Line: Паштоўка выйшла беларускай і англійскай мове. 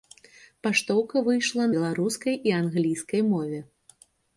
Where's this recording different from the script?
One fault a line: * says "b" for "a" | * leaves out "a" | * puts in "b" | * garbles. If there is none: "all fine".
all fine